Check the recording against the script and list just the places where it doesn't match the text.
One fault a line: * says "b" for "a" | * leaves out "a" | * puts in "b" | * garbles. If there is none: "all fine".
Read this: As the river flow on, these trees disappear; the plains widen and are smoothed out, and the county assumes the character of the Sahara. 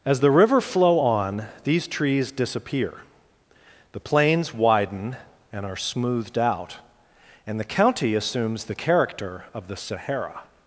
all fine